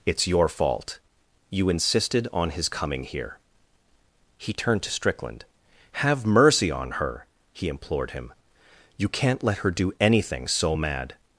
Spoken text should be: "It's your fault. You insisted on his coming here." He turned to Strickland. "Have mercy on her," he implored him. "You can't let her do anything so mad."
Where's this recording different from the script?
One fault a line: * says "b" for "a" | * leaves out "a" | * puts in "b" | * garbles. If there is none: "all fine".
all fine